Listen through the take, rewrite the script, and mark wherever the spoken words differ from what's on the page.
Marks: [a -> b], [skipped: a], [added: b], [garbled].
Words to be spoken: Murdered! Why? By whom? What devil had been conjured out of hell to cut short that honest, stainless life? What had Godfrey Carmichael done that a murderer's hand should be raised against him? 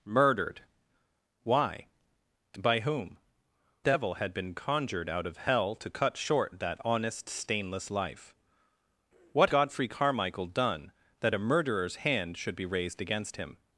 Murdered! Why? By whom? [skipped: What] devil had been conjured out of hell to cut short that honest, stainless life? What [skipped: had] Godfrey Carmichael done that a murderer's hand should be raised against him?